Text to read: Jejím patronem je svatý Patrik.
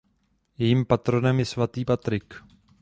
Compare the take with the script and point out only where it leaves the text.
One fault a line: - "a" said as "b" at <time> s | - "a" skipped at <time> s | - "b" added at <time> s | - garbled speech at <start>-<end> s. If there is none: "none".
none